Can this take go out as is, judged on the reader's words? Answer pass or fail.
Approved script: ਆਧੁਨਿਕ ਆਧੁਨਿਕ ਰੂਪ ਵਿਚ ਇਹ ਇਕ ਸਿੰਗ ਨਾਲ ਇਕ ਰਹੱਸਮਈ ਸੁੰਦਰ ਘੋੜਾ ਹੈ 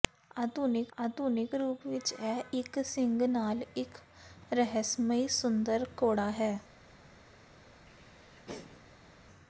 pass